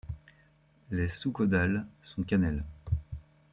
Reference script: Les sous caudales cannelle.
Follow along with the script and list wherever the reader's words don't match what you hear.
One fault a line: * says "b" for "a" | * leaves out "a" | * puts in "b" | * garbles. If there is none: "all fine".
* puts in "sont"